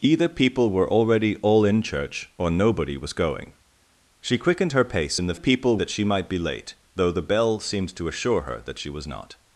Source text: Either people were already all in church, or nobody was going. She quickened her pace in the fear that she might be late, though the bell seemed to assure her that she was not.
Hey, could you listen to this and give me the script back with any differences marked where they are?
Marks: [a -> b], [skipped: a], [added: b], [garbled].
Either people were already all in church, or nobody was going. She quickened her pace in the [fear -> people] that she might be late, though the bell seemed to assure her that she was not.